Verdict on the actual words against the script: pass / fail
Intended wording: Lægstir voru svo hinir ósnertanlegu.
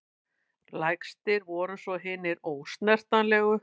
pass